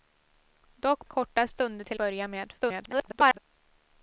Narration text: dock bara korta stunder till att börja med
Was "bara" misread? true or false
true